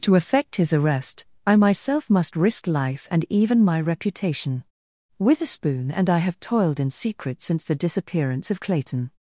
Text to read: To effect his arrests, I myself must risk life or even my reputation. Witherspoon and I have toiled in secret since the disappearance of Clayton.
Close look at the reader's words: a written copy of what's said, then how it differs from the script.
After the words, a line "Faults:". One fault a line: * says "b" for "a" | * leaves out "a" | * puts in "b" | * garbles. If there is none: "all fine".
To effect his arrest, I myself must risk life and even my reputation. Witherspoon and I have toiled in secret since the disappearance of Clayton.
Faults:
* says "arrest" for "arrests"
* says "and" for "or"